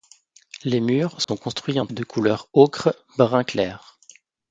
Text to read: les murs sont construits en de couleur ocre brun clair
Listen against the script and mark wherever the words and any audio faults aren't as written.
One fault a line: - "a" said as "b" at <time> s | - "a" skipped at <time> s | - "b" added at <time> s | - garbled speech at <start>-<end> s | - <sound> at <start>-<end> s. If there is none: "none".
- dropout at 1.2-1.3 s